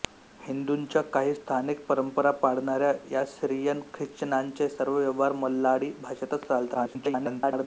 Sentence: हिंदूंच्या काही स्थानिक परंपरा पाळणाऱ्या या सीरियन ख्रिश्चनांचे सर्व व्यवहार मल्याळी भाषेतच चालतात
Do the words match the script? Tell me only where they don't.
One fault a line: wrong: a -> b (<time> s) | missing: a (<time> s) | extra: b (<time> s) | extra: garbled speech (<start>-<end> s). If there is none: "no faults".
extra: garbled speech (6.7-7.7 s)